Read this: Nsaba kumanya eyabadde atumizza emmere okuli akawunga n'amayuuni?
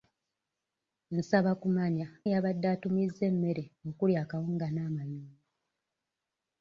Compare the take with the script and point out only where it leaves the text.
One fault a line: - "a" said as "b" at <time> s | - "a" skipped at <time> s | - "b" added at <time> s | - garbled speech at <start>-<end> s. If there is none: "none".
none